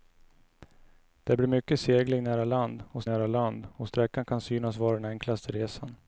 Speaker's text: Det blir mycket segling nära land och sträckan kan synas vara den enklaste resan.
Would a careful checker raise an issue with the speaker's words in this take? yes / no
yes